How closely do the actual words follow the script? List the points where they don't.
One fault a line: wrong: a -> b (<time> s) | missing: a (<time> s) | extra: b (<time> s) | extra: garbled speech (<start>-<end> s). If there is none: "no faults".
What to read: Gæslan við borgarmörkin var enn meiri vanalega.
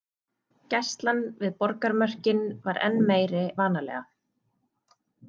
no faults